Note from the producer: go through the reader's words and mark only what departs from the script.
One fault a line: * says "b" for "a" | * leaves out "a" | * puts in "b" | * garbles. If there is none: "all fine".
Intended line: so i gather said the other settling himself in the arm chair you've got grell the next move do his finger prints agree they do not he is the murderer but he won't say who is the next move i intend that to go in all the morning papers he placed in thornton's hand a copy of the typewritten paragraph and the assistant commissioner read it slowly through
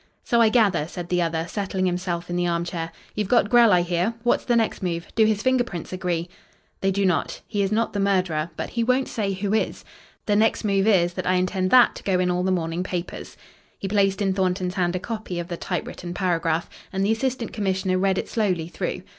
* puts in "i hear what's"
* puts in "not"
* puts in "is that"